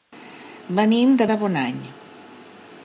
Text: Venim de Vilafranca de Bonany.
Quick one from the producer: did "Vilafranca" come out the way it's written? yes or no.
no